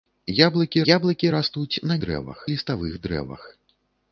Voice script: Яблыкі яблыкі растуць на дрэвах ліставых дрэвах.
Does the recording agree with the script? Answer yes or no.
yes